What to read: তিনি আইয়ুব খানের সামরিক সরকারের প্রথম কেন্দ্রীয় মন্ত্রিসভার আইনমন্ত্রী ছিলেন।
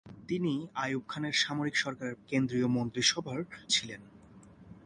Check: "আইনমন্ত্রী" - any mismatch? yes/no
yes